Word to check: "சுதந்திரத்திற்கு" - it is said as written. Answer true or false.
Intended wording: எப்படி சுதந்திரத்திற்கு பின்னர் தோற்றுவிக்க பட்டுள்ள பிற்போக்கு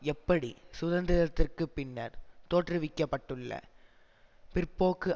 true